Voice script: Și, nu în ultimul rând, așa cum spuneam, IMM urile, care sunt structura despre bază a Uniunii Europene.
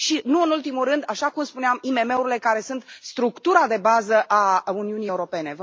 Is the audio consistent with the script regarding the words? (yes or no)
no